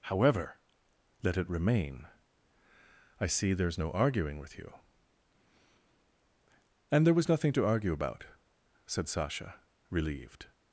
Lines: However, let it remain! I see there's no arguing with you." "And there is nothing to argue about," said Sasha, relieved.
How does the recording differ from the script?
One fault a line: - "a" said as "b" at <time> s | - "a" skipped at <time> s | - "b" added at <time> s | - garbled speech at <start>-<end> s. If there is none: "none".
- "is" said as "was" at 7.1 s